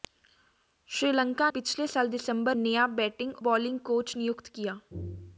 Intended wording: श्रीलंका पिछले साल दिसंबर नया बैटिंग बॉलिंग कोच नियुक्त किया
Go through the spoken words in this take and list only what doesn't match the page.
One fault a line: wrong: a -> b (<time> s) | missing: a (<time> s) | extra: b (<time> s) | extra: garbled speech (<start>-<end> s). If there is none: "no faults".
no faults